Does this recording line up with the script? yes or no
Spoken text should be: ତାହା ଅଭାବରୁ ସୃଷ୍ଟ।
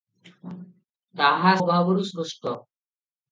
yes